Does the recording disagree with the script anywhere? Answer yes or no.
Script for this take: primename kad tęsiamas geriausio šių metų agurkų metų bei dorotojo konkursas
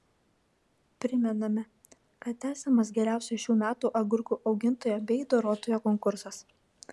yes